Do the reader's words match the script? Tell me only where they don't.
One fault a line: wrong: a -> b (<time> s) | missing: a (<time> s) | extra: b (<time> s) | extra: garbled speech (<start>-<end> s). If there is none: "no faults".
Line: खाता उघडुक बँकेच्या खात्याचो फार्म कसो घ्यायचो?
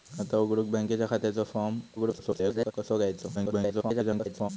extra: garbled speech (2.0-2.7 s)
extra: garbled speech (3.3-4.5 s)